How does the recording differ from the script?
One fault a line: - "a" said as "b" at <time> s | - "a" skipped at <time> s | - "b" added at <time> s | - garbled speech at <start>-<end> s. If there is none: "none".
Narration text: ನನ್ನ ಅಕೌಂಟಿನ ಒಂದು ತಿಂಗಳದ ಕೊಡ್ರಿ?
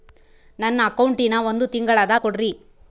none